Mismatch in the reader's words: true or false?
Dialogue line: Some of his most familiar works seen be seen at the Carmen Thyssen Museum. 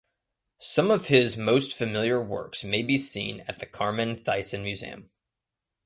true